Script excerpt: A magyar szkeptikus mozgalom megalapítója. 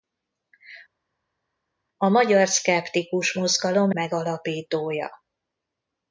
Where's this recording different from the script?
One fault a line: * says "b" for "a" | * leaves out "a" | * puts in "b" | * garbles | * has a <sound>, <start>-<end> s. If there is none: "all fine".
all fine